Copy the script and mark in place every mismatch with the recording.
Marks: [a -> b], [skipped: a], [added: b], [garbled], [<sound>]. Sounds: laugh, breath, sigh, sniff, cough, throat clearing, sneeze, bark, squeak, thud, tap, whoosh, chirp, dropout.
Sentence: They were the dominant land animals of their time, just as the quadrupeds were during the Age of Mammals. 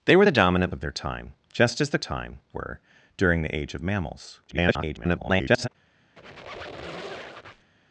They were the dominant [skipped: land animals] of their time, just as the [quadrupeds -> time] were during the Age of Mammals. [garbled] [squeak]